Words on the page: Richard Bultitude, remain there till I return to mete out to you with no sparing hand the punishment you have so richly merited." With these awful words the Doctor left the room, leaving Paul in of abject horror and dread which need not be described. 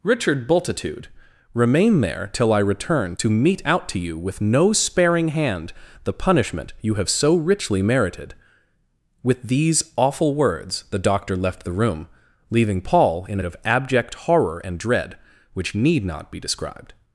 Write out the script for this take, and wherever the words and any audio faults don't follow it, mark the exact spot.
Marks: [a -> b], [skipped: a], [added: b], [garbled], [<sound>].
Richard Bultitude, remain there till I return to mete out to you with no sparing hand the punishment you have so richly merited." With these awful words the Doctor left the room, leaving Paul in of abject horror and dread which need not be described.